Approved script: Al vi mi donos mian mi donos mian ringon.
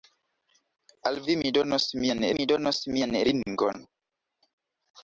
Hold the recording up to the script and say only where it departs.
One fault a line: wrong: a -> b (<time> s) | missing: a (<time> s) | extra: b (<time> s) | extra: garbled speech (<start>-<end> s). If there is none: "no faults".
no faults